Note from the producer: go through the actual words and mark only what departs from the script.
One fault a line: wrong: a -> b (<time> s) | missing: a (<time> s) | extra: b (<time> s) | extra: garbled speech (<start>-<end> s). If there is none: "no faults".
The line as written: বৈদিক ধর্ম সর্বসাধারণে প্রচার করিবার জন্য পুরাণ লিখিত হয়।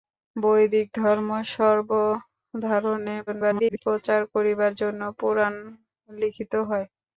extra: garbled speech (3.3-3.8 s)